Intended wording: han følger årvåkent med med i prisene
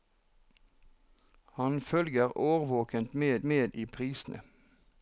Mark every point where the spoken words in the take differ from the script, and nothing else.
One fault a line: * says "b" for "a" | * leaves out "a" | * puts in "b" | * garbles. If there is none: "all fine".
all fine